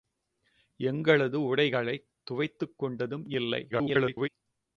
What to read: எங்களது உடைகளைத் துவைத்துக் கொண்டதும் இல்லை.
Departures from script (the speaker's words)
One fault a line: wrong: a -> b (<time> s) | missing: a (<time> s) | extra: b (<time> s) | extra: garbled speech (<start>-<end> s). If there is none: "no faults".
extra: garbled speech (3.7-4.3 s)